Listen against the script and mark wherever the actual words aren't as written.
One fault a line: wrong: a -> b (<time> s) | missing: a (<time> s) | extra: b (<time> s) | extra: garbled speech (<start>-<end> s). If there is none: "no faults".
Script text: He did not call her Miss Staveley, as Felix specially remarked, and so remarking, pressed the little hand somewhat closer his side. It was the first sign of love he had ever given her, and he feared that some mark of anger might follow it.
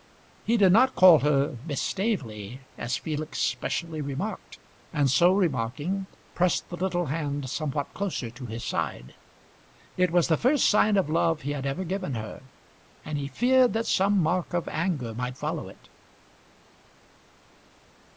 extra: to (8.3 s)